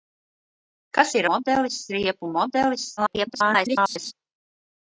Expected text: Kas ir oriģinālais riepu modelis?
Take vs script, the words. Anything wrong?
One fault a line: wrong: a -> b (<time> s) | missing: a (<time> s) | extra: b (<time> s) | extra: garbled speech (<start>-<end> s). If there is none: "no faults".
wrong: oriģinālais -> modelis (1.3 s)
extra: garbled speech (3.0-4.1 s)